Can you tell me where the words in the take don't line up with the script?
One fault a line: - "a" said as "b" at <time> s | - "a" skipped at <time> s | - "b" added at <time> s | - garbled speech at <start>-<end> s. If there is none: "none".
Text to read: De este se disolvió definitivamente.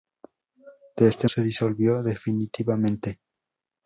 none